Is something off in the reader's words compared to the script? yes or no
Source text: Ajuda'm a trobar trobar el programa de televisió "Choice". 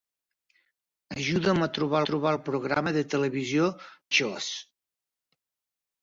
no